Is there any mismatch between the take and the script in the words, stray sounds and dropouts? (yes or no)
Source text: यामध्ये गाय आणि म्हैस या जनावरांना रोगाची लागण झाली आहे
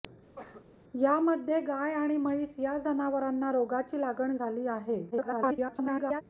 yes